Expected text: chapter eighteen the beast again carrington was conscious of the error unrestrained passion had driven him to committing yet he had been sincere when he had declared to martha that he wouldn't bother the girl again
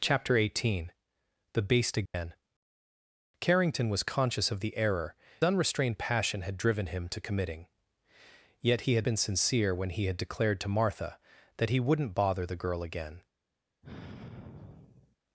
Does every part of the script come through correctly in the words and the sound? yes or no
no